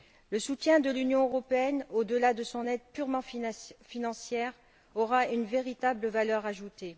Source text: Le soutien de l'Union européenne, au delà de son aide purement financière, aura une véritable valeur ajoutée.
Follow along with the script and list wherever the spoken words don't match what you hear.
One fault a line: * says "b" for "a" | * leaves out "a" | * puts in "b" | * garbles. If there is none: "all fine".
all fine